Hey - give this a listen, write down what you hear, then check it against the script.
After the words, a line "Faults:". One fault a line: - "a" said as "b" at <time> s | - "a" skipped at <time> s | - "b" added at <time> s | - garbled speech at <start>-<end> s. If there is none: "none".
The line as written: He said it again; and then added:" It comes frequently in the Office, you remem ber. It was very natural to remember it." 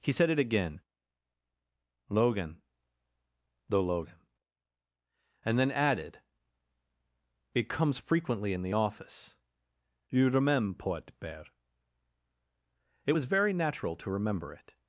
He said it again; logan the logan and then added:" It comes frequently in the Office, you remember port bear. It was very natural to remember it."
Faults:
- "logan the logan" added at 2.1 s
- "remem ber" said as "remember port bear" at 10.3 s